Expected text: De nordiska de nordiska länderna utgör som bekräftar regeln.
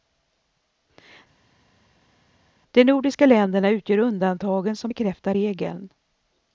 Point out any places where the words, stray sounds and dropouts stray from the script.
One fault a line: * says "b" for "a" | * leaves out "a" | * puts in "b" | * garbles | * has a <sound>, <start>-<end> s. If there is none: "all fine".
* leaves out "de nordiska"
* puts in "undantagen"